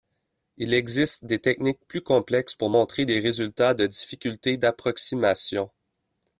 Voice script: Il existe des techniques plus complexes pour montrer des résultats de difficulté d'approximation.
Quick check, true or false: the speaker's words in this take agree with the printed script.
true